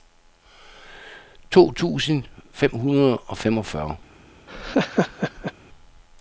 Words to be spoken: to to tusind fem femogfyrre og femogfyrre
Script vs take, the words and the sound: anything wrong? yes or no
yes